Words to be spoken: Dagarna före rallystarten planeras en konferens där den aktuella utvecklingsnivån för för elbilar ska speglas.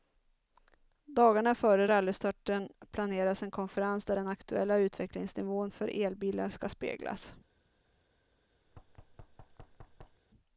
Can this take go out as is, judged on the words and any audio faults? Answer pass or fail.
fail